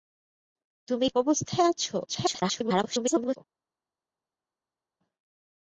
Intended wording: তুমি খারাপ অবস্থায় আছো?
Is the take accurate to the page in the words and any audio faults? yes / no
no